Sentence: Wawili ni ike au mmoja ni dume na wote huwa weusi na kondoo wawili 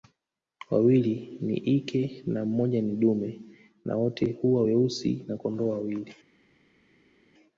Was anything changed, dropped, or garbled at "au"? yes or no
yes